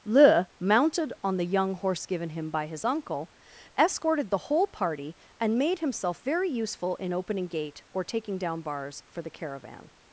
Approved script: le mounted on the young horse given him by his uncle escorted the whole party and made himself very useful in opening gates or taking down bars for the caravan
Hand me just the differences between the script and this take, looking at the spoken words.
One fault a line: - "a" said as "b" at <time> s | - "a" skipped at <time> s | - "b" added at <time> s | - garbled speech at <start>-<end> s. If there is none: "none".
- "gates" said as "gate" at 7.5 s